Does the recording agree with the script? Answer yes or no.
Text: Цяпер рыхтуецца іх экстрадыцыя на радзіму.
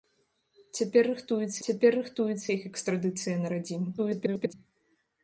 no